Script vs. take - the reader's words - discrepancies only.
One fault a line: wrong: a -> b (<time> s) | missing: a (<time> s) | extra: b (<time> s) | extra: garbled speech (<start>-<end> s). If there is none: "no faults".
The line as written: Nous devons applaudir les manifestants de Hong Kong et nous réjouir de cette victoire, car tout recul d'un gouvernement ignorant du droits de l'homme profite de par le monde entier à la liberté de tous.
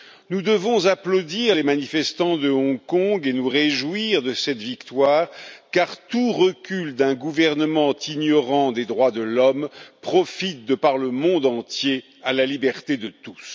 wrong: du -> des (8.7 s)